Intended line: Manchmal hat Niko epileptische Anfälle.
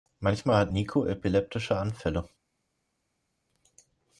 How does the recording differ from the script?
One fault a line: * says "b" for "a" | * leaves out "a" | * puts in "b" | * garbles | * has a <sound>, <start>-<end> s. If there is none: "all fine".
all fine